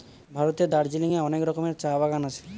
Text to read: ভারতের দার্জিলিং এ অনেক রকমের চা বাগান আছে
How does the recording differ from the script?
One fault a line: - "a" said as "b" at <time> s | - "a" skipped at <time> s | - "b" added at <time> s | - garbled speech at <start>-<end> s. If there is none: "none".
none